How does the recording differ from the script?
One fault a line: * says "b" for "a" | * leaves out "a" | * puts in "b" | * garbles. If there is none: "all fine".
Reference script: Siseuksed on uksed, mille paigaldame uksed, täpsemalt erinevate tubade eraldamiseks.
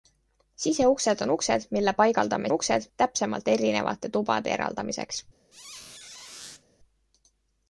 all fine